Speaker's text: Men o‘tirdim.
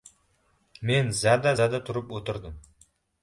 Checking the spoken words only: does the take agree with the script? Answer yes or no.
no